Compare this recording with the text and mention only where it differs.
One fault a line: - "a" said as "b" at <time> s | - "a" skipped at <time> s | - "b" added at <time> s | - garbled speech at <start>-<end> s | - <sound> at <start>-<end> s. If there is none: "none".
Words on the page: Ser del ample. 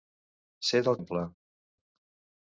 none